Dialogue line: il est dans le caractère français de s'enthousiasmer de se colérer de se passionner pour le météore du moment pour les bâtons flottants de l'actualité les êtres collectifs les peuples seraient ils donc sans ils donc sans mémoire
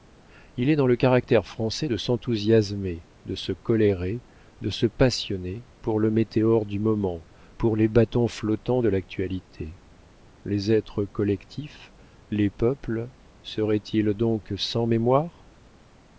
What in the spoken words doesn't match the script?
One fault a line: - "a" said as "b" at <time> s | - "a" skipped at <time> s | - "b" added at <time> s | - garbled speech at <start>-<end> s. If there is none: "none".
- "ils donc sans" skipped at 14.8 s